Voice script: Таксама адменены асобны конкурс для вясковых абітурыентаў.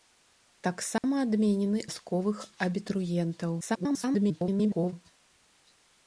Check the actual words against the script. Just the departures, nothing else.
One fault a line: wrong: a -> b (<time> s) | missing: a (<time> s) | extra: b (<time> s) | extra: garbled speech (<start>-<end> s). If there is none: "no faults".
missing: асобны конкурс для (1.8 s)
extra: garbled speech (3.6-4.9 s)